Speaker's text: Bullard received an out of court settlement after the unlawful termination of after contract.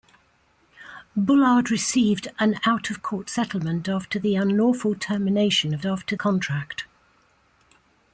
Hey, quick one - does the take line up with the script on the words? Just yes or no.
yes